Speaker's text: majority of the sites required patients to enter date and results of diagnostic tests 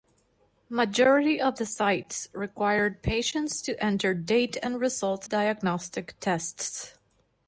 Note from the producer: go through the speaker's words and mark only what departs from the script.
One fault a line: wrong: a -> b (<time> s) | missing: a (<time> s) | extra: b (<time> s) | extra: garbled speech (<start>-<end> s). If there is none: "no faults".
missing: of (5.3 s)